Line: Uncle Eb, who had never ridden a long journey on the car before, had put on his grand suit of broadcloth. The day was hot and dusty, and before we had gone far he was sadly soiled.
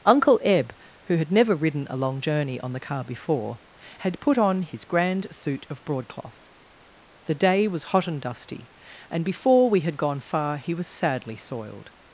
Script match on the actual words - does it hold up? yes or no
yes